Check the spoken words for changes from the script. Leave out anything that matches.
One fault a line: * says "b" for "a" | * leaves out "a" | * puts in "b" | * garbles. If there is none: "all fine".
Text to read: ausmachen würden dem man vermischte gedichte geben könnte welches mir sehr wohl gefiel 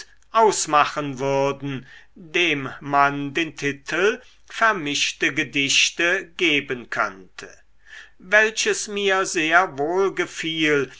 * puts in "den titel"